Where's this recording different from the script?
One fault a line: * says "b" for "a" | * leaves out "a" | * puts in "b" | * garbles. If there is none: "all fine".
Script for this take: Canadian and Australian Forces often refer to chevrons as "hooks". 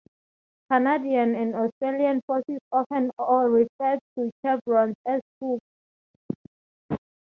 all fine